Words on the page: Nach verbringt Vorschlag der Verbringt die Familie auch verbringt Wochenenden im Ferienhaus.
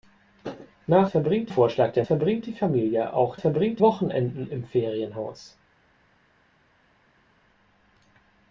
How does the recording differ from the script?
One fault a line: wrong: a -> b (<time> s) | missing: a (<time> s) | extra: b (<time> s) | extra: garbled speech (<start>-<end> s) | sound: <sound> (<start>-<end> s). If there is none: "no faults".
no faults